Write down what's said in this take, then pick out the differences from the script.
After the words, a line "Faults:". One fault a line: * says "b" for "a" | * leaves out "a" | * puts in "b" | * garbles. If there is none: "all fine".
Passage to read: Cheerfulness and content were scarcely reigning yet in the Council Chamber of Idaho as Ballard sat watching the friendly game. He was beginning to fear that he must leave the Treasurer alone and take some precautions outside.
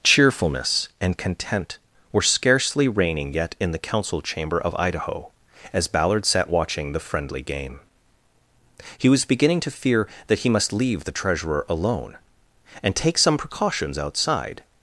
Cheerfulness and content were scarcely reigning yet in the Council Chamber of Idaho as Ballard sat watching the friendly game. He was beginning to fear that he must leave the Treasurer alone and take some precautions outside.
Faults:
all fine